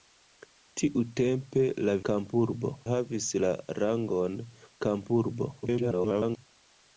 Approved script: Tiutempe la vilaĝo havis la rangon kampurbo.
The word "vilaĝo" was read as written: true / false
false